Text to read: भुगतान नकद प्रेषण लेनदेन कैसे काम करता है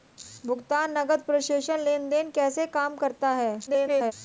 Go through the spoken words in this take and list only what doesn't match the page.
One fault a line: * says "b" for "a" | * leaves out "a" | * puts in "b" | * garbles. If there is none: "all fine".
* garbles